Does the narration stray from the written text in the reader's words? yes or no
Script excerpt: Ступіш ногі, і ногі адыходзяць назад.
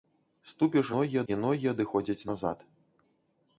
no